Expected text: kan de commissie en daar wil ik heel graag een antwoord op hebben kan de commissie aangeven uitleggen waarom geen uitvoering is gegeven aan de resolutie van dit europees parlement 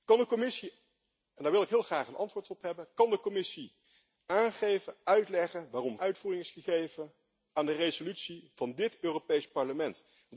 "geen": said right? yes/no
no